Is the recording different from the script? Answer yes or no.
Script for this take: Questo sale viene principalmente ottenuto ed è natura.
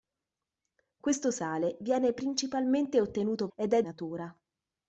no